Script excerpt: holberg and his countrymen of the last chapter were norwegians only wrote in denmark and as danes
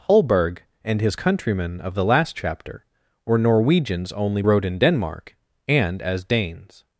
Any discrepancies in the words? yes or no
no